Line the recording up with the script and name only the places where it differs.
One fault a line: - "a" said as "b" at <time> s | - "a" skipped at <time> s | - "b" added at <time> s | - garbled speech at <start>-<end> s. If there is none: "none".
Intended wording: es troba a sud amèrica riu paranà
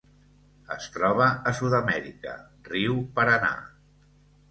none